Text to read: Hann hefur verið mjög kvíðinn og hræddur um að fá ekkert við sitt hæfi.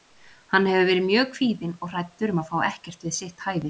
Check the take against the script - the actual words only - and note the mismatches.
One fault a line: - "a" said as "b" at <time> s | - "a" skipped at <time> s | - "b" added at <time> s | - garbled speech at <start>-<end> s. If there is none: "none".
none